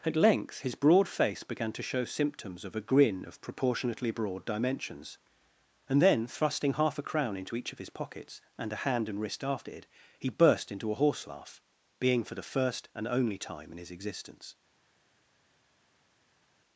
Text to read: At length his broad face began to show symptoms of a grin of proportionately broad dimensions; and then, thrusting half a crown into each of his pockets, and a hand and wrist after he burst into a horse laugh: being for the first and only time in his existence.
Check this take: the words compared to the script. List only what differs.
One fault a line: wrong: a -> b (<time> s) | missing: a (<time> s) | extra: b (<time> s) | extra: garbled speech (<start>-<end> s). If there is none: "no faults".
extra: it (9.7 s)